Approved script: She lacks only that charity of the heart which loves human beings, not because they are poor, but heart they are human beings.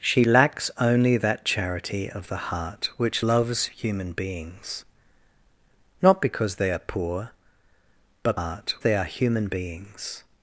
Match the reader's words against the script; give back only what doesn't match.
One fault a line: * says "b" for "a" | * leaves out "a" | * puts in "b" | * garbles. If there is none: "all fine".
all fine